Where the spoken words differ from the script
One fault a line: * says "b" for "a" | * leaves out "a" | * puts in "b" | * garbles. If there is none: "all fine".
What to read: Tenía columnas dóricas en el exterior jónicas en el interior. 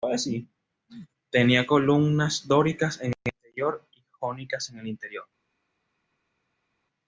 * puts in "y"